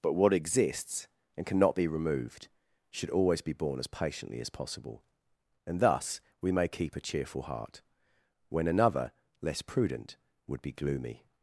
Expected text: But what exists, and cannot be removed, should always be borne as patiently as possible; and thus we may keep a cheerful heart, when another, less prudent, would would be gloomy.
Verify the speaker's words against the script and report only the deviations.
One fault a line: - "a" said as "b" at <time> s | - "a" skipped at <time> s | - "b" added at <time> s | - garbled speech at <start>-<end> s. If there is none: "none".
- "would" skipped at 10.6 s